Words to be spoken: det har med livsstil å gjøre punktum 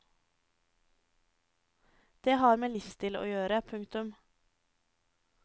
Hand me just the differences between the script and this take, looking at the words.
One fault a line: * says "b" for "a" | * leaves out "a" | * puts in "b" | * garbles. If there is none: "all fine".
all fine